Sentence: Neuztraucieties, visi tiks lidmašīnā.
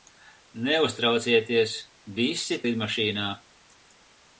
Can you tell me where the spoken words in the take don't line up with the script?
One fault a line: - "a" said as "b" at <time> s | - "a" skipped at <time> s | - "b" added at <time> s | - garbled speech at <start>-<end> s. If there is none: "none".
- "tiks" skipped at 2.6 s